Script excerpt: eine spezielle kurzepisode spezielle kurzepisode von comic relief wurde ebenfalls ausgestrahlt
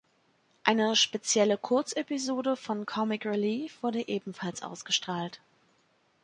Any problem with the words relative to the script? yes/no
yes